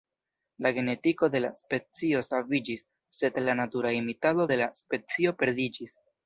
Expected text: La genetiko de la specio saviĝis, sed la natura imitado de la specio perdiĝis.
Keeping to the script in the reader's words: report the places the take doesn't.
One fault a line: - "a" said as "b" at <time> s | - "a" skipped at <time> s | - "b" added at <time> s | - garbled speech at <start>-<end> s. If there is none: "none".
none